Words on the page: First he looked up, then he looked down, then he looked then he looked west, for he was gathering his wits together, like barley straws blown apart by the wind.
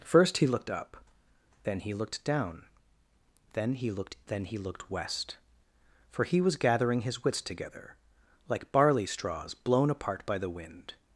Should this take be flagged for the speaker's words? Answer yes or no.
no